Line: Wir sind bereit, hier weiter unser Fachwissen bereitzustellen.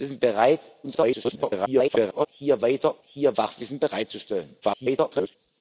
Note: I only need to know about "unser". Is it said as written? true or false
false